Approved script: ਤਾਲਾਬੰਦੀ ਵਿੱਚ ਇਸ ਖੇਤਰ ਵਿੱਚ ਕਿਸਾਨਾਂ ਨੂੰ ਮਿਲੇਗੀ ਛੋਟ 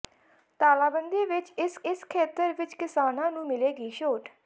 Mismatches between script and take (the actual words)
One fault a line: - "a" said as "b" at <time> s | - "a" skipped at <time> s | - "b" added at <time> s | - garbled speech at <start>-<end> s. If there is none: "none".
- "ਇਸ" added at 1.8 s